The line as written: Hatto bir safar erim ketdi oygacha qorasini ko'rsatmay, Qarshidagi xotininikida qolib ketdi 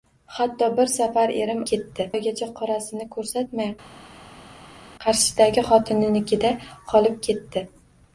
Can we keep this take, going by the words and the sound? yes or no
yes